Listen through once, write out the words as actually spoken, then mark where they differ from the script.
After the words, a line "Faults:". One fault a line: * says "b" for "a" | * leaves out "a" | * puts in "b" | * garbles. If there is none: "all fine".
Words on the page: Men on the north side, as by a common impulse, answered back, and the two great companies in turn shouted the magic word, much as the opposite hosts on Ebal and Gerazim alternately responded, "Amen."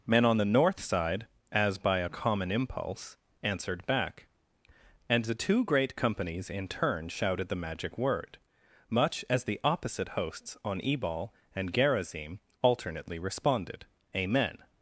Men on the north side, as by a common impulse, answered back, and the two great companies in turn shouted the magic word, much as the opposite hosts on Ebal and Gerazim alternately responded, "Amen."
Faults:
all fine